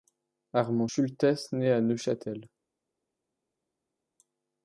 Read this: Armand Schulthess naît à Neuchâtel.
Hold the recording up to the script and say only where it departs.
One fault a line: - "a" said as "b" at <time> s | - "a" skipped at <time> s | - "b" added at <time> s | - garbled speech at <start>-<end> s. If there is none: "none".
none